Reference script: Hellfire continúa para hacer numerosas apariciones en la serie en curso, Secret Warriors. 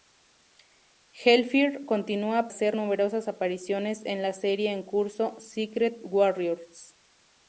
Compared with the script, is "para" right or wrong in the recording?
wrong